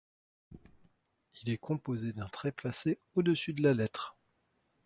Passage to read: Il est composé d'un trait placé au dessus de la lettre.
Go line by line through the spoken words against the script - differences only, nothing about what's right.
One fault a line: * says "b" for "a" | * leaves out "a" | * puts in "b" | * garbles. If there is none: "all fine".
all fine